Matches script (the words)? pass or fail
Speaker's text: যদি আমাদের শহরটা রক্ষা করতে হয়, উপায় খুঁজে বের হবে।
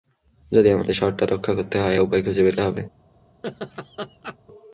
pass